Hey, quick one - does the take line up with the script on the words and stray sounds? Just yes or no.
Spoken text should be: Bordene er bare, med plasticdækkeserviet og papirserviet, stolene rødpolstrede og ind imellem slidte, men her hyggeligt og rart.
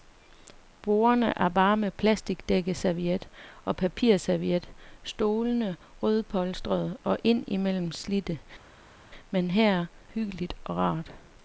yes